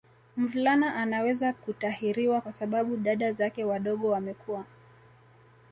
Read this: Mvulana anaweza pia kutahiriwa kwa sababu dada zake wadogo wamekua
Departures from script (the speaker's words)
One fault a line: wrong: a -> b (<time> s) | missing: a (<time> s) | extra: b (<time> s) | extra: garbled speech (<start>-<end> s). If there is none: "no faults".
missing: pia (1.5 s)